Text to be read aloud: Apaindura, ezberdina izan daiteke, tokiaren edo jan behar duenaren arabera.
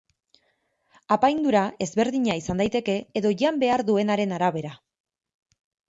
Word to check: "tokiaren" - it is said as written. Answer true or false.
false